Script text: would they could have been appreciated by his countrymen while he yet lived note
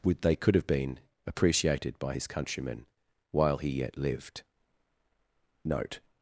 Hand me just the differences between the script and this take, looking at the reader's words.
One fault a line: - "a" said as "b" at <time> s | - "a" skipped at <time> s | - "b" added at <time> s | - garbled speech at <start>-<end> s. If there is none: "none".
none